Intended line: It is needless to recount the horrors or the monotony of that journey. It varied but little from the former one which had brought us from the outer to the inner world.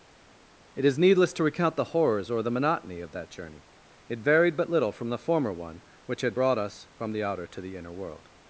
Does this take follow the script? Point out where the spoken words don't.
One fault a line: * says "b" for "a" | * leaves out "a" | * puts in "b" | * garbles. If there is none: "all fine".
all fine